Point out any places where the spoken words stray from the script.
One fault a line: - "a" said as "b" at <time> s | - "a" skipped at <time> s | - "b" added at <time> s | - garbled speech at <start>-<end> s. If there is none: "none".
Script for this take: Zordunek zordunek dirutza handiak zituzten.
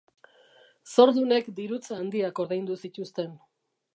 - "zordunek" skipped at 1.5 s
- "ordaindu" added at 2.4 s